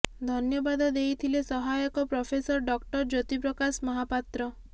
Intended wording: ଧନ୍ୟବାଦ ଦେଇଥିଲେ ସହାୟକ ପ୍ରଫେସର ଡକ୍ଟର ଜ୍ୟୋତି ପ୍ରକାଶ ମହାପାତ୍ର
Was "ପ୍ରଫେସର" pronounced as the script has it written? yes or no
yes